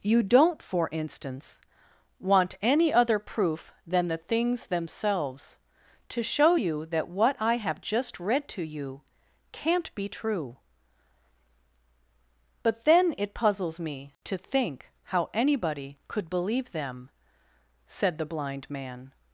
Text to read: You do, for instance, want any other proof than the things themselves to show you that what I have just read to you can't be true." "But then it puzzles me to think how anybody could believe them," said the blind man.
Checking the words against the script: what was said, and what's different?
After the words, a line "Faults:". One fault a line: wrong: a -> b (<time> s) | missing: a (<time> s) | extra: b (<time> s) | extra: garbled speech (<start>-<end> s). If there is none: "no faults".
You don't, for instance, want any other proof than the things themselves to show you that what I have just read to you can't be true." "But then it puzzles me to think how anybody could believe them," said the blind man.
Faults:
wrong: do -> don't (0.2 s)